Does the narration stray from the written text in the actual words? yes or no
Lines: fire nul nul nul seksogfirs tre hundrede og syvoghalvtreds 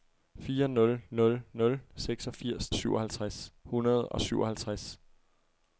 yes